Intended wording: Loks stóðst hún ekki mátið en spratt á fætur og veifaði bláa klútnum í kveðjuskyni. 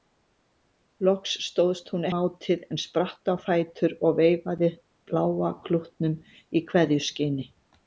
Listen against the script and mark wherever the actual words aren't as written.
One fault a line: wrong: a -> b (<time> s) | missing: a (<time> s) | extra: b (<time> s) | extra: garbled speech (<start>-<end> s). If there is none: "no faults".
missing: ekki (2.1 s)